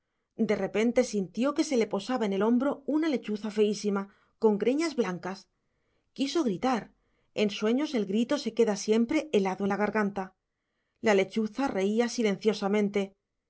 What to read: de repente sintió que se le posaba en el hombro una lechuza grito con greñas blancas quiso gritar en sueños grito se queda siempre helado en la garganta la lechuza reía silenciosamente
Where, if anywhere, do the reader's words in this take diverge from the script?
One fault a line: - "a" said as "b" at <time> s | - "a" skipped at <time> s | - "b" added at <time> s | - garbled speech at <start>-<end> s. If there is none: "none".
- "grito" said as "feísima" at 3.5 s
- "el" added at 7.9 s